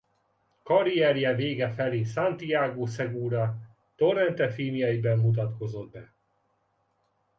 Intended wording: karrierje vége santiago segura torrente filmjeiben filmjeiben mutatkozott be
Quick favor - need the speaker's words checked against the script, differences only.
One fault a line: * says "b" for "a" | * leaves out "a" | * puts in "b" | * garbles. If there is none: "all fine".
* puts in "felé"
* leaves out "filmjeiben"